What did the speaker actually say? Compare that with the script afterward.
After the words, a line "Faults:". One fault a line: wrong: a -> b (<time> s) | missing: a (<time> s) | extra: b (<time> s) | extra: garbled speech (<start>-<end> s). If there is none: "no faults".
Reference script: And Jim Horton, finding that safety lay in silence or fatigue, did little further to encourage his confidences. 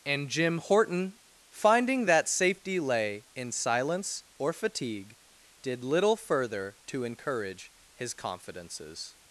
And Jim Horton, finding that safety lay in silence or fatigue, did little further to encourage his confidences.
Faults:
no faults